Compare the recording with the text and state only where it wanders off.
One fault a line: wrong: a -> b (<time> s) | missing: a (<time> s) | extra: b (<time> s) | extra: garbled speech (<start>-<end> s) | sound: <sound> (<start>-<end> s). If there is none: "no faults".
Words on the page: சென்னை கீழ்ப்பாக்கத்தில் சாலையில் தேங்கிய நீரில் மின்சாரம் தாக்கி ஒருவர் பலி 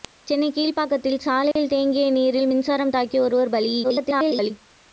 sound: dropout (1.5-1.6 s)
extra: garbled speech (3.8-4.5 s)